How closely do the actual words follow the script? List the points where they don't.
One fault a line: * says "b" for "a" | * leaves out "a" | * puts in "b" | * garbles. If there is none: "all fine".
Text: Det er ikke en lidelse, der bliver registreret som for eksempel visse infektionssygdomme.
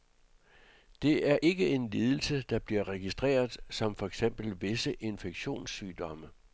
all fine